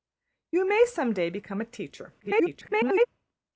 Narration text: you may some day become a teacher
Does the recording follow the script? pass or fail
fail